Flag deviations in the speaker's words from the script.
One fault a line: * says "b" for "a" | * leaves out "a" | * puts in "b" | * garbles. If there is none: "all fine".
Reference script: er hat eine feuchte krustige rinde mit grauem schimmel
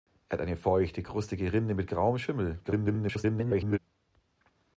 * garbles